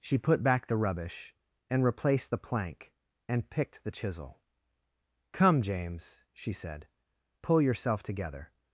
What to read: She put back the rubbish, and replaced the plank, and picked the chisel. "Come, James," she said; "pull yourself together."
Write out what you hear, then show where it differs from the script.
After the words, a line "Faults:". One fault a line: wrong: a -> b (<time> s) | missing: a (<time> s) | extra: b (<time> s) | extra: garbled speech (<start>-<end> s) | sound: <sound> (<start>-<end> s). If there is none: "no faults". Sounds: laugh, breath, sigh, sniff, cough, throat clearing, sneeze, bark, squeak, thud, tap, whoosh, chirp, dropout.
She put back the rubbish, and replaced the plank, and picked the chisel. "Come, James," she said; "pull yourself together."
Faults:
no faults